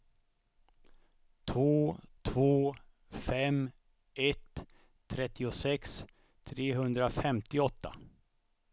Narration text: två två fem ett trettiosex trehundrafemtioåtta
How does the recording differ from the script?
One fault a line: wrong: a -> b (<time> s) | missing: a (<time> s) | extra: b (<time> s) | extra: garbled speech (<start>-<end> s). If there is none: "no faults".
no faults